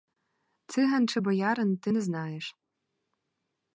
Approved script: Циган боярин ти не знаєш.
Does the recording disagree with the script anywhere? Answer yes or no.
yes